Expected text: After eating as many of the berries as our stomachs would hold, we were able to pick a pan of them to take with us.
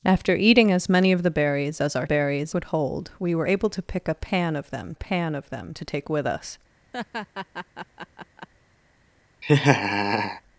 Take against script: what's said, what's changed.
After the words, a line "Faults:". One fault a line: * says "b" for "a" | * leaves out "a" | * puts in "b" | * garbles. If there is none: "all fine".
After eating as many of the berries as our berries would hold, we were able to pick a pan of them pan of them to take with us.
Faults:
* says "berries" for "stomachs"
* puts in "pan of them"